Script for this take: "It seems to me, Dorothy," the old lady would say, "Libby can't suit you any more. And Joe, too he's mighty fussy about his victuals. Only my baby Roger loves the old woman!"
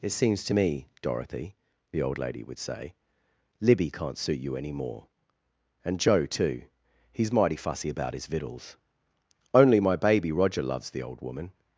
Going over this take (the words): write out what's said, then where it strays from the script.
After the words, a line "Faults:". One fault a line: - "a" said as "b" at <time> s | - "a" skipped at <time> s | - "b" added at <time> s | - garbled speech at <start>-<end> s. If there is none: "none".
"It seems to me, Dorothy," the old lady would say, "Libby can't suit you any more. And Joe, too he's mighty fussy about his victuals. Only my baby Roger loves the old woman!"
Faults:
none